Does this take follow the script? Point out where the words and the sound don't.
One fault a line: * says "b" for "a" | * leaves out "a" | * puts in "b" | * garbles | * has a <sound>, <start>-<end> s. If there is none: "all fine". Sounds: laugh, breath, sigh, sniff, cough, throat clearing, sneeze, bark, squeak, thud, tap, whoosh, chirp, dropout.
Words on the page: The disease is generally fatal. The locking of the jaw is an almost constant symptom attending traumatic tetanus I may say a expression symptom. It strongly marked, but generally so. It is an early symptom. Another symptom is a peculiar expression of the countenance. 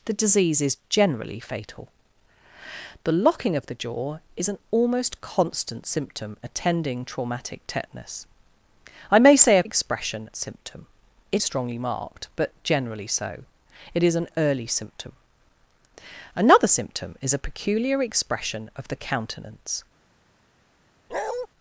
* has a bark, 21.1-21.5 s